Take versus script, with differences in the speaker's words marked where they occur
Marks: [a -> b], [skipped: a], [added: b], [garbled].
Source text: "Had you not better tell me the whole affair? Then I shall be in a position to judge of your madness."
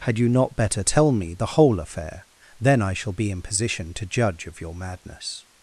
"Had you not better tell me the whole affair? Then I shall be in [skipped: a] position to judge of your madness."